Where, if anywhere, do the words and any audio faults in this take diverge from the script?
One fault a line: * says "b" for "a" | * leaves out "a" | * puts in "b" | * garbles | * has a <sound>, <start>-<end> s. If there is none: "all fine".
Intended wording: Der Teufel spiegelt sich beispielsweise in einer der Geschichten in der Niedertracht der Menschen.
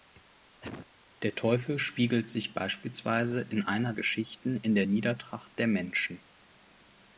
* has a cough, 0.6-0.9 s
* leaves out "der"